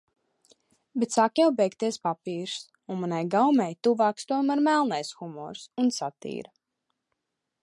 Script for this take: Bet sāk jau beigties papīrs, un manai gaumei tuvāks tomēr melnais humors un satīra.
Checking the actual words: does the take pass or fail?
pass